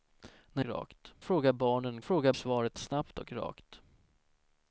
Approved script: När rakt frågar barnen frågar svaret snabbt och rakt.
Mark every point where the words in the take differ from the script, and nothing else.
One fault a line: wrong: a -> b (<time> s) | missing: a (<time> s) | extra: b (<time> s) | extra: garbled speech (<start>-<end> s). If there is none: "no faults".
no faults